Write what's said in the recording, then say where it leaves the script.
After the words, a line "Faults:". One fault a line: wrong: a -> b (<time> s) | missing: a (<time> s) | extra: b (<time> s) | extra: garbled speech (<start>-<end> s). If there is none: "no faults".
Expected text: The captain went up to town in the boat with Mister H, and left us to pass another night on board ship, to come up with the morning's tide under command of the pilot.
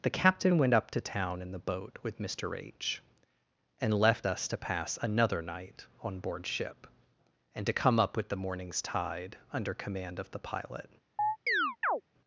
The captain went up to town in the boat with Mister H, and left us to pass another night on board ship, and to come up with the morning's tide under command of the pilot.
Faults:
extra: and (7.6 s)